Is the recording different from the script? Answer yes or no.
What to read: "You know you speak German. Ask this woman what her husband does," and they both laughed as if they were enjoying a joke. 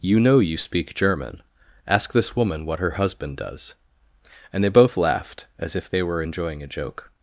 no